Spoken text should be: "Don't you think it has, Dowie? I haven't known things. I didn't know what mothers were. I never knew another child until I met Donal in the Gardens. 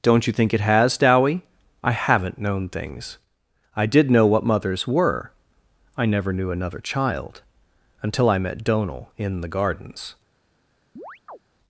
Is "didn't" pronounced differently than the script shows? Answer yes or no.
yes